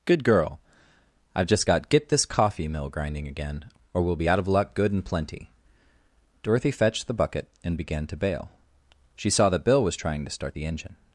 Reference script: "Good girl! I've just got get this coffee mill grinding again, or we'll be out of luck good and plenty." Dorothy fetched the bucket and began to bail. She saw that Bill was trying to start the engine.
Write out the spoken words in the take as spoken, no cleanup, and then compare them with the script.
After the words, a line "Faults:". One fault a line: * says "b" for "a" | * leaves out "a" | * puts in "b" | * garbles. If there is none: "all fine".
"Good girl! I've just got get this coffee mill grinding again, or we'll be out of luck good and plenty." Dorothy fetched the bucket and began to bail. She saw that Bill was trying to start the engine.
Faults:
all fine